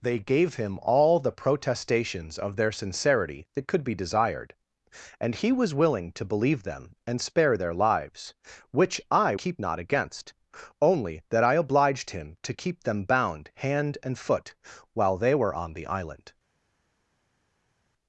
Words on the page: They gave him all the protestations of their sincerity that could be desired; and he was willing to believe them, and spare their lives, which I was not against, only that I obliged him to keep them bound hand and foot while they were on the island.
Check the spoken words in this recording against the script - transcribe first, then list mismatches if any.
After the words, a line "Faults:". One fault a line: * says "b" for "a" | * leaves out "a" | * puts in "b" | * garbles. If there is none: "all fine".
They gave him all the protestations of their sincerity that could be desired; and he was willing to believe them, and spare their lives, which I keep not against, only that I obliged him to keep them bound hand and foot while they were on the island.
Faults:
* says "keep" for "was"